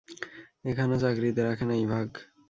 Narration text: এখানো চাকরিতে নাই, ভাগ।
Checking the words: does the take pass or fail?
fail